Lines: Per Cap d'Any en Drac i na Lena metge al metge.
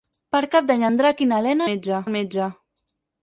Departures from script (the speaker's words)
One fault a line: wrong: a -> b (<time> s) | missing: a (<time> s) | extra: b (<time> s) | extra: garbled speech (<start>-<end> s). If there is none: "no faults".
no faults